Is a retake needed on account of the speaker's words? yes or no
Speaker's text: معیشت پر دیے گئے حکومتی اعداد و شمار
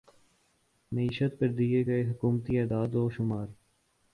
no